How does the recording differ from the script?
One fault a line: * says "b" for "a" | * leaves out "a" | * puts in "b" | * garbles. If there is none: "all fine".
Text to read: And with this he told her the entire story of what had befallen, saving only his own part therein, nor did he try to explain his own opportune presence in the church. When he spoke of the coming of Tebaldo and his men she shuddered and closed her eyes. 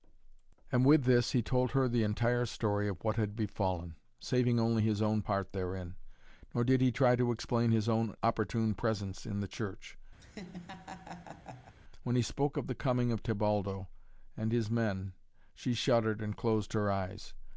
all fine